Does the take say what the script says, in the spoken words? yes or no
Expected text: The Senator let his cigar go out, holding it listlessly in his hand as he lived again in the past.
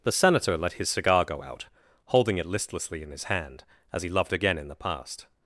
no